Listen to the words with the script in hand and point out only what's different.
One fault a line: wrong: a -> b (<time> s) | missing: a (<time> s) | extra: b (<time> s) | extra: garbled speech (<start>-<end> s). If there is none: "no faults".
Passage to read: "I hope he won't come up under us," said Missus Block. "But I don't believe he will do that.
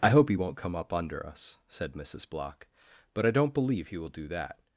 no faults